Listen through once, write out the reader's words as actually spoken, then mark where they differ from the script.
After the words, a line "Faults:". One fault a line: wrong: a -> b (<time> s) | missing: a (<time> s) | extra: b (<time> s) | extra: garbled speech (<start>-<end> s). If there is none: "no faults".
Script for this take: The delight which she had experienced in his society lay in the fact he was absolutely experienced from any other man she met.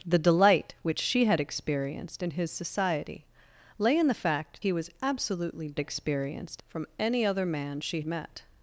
The delight which she had experienced in his society lay in the fact he was absolutely experienced from any other man she met.
Faults:
no faults